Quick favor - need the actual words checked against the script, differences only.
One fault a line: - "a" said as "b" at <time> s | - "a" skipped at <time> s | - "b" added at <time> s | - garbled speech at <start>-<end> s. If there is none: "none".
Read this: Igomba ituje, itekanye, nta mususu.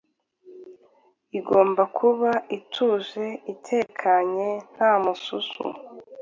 - "kuba" added at 2.0 s